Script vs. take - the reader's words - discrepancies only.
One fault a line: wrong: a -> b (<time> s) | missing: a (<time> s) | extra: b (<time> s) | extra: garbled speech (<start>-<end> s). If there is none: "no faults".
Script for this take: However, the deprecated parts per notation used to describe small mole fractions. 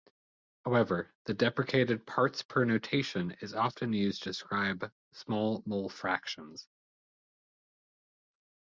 extra: is often (3.4 s)